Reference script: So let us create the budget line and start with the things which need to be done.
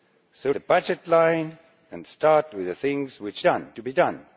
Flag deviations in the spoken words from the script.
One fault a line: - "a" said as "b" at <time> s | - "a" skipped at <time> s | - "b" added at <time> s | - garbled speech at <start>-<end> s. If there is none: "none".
- "let us create" skipped at 0.5 s
- "need" said as "done" at 3.4 s